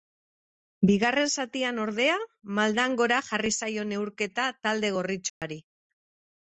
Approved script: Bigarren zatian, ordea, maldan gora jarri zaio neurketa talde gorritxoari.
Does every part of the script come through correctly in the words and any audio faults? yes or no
no